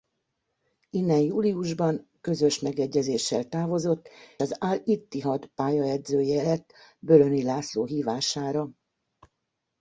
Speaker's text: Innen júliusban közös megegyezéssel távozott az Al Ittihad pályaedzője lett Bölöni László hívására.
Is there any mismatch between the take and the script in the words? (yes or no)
no